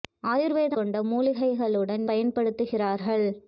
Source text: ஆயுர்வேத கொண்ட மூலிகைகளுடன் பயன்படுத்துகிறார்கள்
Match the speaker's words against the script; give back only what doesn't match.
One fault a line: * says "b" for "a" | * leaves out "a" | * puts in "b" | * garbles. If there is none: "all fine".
all fine